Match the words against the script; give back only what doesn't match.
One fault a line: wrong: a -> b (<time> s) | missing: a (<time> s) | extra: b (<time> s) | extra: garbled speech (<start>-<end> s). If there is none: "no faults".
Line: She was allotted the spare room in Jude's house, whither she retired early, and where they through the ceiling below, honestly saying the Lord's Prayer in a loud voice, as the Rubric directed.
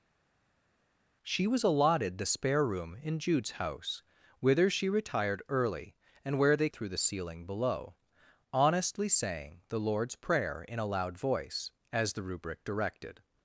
no faults